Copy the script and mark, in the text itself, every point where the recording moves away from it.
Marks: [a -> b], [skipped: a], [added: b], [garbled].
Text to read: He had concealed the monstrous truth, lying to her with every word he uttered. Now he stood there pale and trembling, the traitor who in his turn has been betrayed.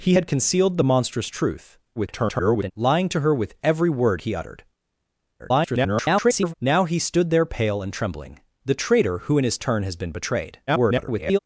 He had concealed the monstrous truth, [garbled] lying to her with every word he uttered. [garbled] Now he stood there pale and trembling, the traitor who in his turn has been betrayed. [garbled]